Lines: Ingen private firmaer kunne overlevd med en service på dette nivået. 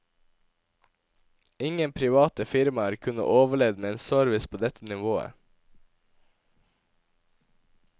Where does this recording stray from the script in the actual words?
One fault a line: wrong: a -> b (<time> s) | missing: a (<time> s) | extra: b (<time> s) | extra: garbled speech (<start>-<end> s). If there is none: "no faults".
no faults